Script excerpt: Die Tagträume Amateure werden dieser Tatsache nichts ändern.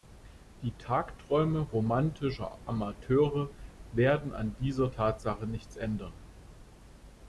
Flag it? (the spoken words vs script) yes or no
yes